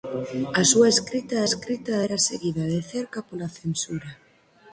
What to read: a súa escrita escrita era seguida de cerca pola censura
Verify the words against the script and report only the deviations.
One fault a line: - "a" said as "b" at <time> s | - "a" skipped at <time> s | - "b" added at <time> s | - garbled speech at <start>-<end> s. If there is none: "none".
none